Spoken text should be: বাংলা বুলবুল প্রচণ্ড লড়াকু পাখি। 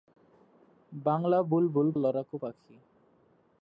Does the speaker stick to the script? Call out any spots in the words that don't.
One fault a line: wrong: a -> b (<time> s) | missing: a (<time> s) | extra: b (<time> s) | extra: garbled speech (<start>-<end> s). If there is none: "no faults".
missing: প্রচণ্ড (1.9 s)